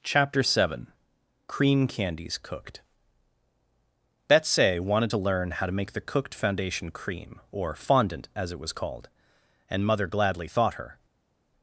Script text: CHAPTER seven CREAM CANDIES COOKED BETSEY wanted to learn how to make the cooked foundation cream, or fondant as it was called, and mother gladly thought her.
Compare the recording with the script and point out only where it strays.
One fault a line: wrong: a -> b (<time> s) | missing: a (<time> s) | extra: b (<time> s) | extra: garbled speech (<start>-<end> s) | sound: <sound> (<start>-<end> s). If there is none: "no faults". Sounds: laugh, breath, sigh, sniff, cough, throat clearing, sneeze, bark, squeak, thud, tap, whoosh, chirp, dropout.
no faults